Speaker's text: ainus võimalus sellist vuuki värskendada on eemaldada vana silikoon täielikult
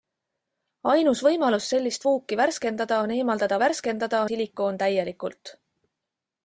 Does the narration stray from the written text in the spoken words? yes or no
yes